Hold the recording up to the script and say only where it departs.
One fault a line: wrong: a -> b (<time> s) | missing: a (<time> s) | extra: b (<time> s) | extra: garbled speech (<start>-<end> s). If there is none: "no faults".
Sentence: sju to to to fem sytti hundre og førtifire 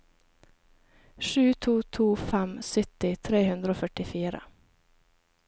missing: to (2.1 s)
extra: tre (3.3 s)